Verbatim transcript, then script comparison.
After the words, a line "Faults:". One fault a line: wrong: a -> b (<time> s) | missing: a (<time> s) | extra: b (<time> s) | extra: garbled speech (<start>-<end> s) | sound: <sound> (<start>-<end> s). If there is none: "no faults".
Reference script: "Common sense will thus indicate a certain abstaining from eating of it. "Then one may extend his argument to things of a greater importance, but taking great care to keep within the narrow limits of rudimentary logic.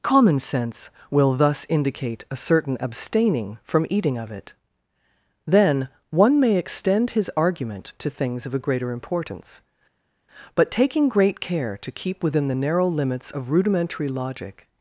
"Common sense will thus indicate a certain abstaining from eating of it. "Then one may extend his argument to things of a greater importance, but taking great care to keep within the narrow limits of rudimentary logic.
Faults:
no faults